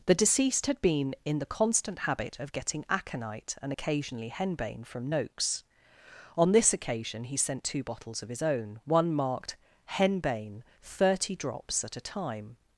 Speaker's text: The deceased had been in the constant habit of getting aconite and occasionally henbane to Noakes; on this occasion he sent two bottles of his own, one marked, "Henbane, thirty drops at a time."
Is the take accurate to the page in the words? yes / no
no